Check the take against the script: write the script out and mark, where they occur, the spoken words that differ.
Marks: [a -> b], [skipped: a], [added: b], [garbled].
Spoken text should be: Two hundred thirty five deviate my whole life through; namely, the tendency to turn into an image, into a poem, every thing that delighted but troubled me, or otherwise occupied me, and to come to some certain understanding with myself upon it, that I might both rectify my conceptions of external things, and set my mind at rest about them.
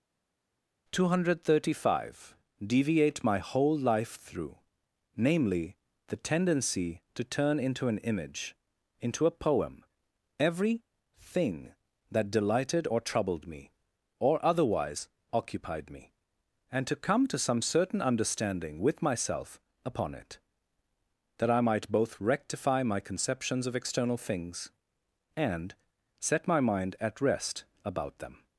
Two hundred thirty five deviate my whole life through; namely, the tendency to turn into an image, into a poem, every thing that delighted [but -> or] troubled me, or otherwise occupied me, and to come to some certain understanding with myself upon it, that I might both rectify my conceptions of external things, and set my mind at rest about them.